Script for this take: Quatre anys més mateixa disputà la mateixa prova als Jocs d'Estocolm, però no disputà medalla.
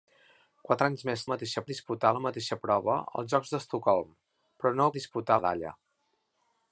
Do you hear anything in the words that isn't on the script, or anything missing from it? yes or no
no